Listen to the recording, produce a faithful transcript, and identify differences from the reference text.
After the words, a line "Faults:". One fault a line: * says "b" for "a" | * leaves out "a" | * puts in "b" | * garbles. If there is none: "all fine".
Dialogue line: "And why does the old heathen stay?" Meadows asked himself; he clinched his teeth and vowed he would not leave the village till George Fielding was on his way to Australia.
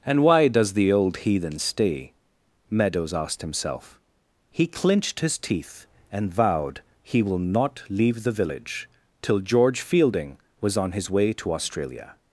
"And why does the old heathen stay?" Meadows asked himself; he clinched his teeth and vowed he will not leave the village till George Fielding was on his way to Australia.
Faults:
* says "will" for "would"